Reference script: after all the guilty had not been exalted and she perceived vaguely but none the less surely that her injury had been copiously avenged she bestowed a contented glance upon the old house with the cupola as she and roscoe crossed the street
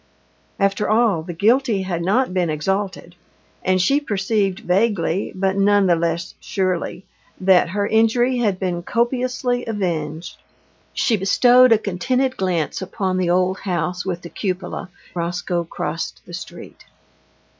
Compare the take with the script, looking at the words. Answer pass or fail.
fail